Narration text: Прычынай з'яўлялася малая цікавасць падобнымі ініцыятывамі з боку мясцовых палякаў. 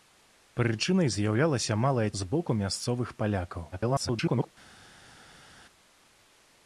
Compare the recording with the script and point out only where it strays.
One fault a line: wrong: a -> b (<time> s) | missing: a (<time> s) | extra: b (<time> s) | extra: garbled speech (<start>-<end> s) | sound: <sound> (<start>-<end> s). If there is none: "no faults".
missing: цікавасць падобнымі ініцыятывамі (2.0 s)
extra: garbled speech (3.7-4.5 s)